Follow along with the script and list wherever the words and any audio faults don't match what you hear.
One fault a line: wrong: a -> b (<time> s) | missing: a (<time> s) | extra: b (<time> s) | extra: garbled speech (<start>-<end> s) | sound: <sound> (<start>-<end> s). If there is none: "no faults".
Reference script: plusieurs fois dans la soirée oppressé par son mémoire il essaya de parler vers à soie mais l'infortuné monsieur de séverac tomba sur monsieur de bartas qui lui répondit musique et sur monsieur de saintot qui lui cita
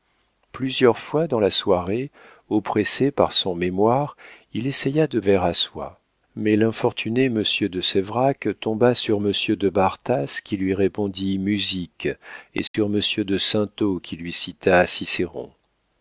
missing: parler (5.2 s)
sound: dropout (12.7-12.7 s)